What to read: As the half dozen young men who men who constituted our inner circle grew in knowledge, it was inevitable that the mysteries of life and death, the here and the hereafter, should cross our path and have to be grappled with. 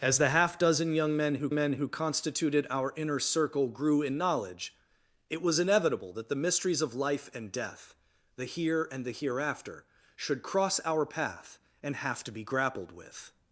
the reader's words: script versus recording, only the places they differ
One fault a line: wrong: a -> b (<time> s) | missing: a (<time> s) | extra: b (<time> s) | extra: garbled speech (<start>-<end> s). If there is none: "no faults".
no faults